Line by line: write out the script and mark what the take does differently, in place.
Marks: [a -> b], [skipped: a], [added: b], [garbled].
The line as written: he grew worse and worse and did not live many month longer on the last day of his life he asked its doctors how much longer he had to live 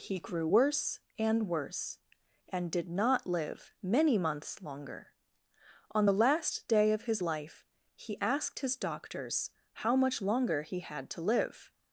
he grew worse and worse and did not live many [month -> months] longer on the last day of his life he asked [its -> his] doctors how much longer he had to live